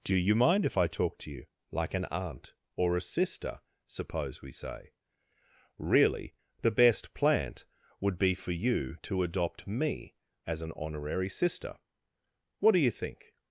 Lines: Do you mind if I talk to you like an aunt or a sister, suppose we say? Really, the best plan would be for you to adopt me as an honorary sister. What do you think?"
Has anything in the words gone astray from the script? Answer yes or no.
yes